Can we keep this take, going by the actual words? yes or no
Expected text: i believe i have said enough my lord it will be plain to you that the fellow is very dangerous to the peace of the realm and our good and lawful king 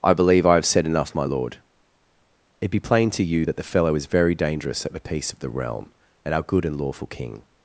no